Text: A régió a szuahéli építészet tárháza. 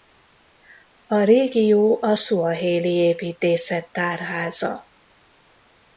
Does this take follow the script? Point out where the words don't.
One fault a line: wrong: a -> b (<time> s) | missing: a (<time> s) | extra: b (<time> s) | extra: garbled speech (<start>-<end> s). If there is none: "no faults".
no faults